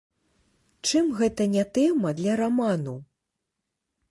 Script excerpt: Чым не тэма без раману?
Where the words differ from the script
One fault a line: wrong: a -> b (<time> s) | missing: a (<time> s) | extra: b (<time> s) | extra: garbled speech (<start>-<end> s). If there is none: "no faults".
extra: гэта (1.2 s)
wrong: без -> для (2.2 s)